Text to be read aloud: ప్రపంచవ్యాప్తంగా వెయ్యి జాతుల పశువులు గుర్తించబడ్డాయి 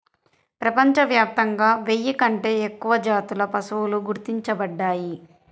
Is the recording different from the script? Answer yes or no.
yes